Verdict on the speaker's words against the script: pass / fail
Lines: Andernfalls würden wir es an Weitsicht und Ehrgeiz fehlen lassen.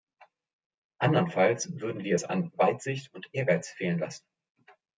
pass